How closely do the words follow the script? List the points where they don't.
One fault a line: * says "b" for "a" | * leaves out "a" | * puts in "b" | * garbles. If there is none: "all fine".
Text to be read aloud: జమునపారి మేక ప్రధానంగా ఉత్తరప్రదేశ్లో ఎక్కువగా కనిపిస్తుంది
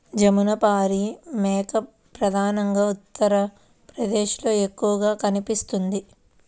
all fine